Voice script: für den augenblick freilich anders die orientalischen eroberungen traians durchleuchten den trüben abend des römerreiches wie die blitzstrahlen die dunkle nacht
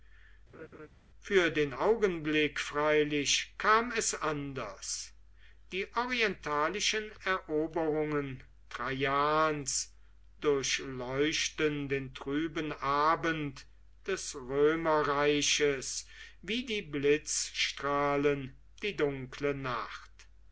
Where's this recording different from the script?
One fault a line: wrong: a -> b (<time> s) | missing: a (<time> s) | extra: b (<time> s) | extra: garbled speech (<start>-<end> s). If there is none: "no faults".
extra: kam es (3.6 s)